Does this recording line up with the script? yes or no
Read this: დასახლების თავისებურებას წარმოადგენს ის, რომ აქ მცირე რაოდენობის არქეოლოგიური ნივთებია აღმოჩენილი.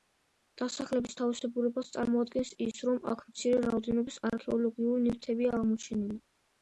yes